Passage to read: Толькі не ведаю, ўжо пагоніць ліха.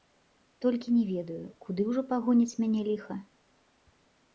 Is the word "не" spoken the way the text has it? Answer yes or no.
yes